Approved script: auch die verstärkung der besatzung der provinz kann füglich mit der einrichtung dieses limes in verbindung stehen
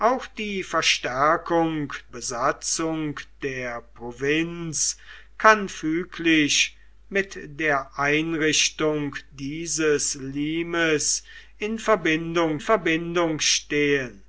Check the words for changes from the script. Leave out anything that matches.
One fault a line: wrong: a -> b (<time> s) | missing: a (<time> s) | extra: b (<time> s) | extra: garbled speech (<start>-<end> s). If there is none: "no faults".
missing: der (1.9 s)
extra: verbindung (12.6 s)